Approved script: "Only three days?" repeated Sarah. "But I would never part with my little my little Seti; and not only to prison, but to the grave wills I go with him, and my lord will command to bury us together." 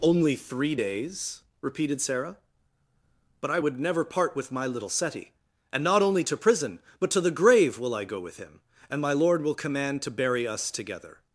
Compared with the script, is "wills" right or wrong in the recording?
wrong